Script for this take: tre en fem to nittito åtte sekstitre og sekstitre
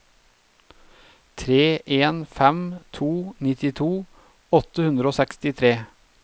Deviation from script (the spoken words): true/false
true